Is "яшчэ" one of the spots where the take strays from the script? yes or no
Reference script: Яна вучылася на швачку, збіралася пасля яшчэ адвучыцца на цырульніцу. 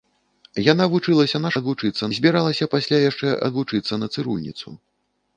no